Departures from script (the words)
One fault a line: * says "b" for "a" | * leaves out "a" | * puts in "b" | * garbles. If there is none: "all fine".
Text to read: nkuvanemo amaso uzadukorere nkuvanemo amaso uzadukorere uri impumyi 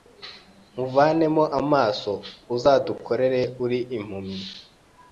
* leaves out "nkuvanemo amaso uzadukorere"